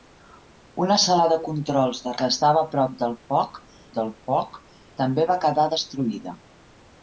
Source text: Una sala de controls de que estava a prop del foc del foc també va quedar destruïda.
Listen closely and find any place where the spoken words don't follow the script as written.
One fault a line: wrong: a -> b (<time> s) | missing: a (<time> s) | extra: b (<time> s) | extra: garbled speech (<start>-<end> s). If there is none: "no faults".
no faults